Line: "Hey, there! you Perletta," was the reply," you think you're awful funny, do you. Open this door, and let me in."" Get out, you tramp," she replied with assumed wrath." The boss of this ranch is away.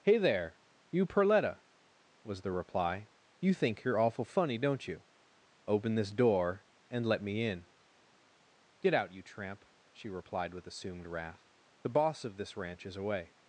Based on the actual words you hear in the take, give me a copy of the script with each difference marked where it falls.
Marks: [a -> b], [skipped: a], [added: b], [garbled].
"Hey, there! you Perletta," was the reply," you think you're awful funny, [do -> don't] you. Open this door, and let me in."" Get out, you tramp," she replied with assumed wrath." The boss of this ranch is away.